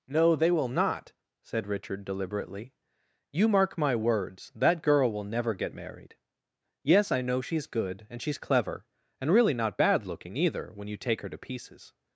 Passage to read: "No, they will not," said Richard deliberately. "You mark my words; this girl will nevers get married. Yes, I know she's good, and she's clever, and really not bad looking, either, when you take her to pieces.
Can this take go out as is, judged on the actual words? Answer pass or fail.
fail